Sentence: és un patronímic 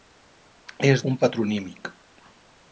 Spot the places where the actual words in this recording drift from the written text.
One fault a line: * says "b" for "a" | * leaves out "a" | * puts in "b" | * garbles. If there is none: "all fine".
all fine